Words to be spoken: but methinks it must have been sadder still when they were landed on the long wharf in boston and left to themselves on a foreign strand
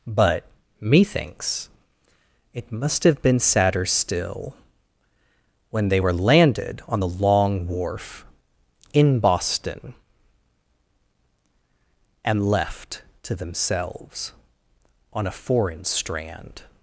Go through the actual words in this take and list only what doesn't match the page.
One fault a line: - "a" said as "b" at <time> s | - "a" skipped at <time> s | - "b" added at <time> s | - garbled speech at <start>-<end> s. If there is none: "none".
none